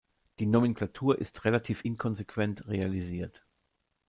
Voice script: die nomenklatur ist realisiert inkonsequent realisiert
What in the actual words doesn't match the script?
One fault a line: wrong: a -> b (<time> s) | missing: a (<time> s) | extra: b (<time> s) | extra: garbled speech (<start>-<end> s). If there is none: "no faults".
wrong: realisiert -> relativ (1.4 s)